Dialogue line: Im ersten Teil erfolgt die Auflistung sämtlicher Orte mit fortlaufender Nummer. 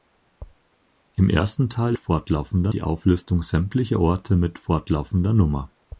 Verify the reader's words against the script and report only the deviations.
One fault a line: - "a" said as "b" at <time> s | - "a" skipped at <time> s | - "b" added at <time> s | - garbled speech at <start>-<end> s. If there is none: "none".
- "erfolgt" said as "fortlaufender" at 2.0 s